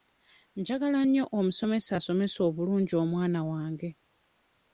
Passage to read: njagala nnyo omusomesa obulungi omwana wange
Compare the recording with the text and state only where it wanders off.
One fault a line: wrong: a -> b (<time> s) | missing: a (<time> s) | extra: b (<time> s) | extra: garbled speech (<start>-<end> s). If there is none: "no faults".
extra: asomesa (2.0 s)